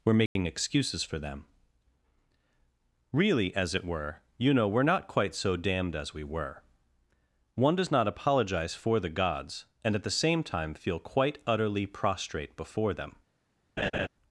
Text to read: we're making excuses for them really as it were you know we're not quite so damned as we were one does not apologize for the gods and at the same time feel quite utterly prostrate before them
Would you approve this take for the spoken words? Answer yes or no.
yes